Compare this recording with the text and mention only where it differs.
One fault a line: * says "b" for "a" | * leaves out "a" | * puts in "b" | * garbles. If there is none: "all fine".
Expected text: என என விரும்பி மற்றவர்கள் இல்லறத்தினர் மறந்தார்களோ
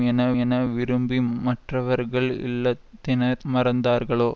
all fine